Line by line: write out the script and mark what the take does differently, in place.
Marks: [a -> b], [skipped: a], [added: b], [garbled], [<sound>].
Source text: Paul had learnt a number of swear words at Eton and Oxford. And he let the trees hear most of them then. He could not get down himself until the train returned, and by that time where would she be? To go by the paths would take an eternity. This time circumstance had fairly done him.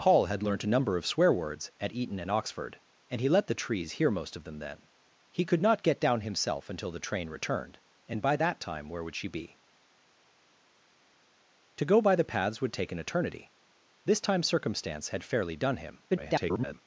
Paul had learnt a number of swear words at Eton and Oxford. And he let the trees hear most of them then. He could not get down himself until the train returned, and by that time where would she be? To go by the paths would take an eternity. This time circumstance had fairly done him. [garbled]